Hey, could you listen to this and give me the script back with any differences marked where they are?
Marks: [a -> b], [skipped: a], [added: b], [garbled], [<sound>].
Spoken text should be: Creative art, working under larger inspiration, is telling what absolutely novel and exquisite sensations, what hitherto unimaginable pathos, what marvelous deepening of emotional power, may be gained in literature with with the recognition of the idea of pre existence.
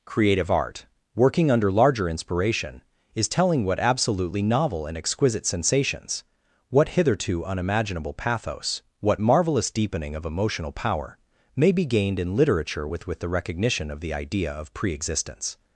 Creative art, working under larger inspiration, is telling what absolutely novel and exquisite sensations, what hitherto unimaginable pathos, what marvelous deepening of emotional power, may be gained in literature with with the recognition of the idea of pre existence.